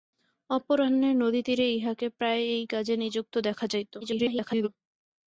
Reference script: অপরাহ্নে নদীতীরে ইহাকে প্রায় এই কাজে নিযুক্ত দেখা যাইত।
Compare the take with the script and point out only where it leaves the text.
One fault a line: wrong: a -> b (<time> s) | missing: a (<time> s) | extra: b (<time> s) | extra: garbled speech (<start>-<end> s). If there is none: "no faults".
extra: garbled speech (4.0-4.7 s)